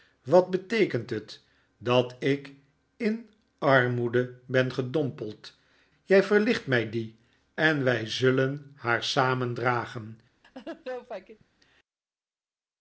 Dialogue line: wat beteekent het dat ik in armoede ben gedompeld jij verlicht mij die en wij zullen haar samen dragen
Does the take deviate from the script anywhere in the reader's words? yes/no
no